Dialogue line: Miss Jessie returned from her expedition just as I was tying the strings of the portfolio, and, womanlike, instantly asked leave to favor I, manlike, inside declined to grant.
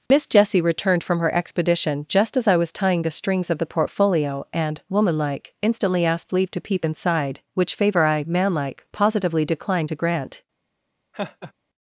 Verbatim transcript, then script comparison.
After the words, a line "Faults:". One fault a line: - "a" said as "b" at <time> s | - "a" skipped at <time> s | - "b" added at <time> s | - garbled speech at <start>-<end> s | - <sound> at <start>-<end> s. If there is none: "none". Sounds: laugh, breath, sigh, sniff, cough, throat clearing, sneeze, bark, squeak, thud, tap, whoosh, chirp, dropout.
Miss Jessie returned from her expedition just as I was tying the strings of the portfolio, and, womanlike, instantly asked leave to peep inside, which favor I, manlike, positively declined to grant.
Faults:
- dropout at 0.1-0.1 s
- "peep inside which" added at 6.6 s
- "inside" said as "positively" at 8.9 s
- laugh at 11.1-11.5 s